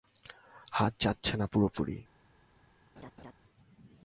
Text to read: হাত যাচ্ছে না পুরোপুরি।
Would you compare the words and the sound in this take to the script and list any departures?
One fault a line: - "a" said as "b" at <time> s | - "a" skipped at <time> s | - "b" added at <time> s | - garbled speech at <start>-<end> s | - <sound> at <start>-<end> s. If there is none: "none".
- laugh at 3.0-3.3 s